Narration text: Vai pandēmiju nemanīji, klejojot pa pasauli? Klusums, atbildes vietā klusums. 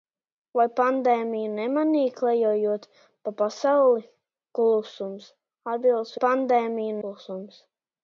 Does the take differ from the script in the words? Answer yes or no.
yes